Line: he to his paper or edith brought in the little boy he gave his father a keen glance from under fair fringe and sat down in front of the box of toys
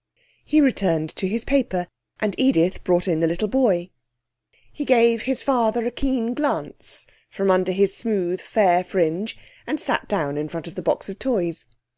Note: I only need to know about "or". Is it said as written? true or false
false